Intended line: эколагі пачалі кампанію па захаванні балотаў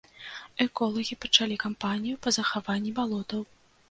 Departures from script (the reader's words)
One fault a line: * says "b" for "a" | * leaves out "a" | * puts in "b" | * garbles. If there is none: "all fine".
all fine